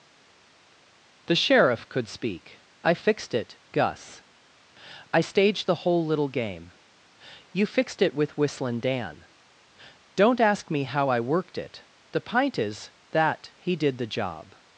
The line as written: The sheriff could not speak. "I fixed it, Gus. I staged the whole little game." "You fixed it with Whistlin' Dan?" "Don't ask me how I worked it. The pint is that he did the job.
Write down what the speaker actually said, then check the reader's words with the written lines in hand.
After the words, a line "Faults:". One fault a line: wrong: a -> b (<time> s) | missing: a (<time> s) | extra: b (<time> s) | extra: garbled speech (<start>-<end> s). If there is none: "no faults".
The sheriff could speak. "I fixed it, Gus. I staged the whole little game." "You fixed it with Whistlin' Dan?" "Don't ask me how I worked it. The pint is that he did the job.
Faults:
missing: not (2.1 s)